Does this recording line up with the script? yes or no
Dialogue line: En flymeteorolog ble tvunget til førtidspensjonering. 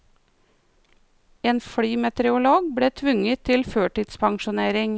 yes